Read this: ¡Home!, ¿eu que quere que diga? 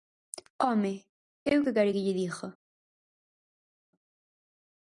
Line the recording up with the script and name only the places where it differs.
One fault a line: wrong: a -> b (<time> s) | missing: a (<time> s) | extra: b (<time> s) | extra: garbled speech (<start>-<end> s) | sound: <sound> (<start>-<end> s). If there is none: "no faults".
extra: lle (2.0 s)